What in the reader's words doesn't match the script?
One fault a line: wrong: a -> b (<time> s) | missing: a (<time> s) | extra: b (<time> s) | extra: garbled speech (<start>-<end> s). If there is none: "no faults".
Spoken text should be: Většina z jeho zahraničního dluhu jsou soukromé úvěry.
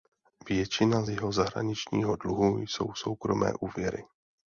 no faults